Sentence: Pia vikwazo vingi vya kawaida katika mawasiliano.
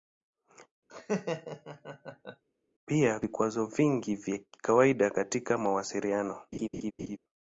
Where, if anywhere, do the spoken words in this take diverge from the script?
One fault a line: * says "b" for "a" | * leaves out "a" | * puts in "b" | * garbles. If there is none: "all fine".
all fine